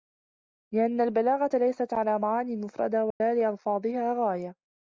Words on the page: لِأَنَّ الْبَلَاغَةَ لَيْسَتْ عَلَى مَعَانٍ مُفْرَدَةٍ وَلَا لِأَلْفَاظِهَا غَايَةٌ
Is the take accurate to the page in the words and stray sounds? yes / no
no